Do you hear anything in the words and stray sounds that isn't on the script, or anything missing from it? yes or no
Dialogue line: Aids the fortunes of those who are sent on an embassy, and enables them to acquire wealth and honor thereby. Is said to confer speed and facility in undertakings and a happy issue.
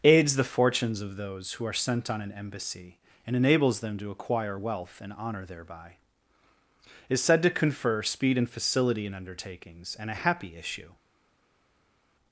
no